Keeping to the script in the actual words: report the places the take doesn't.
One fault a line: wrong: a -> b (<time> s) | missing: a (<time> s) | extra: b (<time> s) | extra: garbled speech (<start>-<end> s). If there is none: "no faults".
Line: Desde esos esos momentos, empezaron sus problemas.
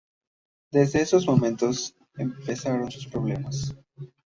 missing: esos (1.3 s)